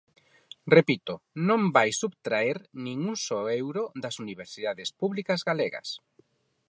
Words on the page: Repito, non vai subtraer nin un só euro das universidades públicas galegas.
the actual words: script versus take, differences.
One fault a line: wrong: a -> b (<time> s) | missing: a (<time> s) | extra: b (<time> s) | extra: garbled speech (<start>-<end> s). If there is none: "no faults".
no faults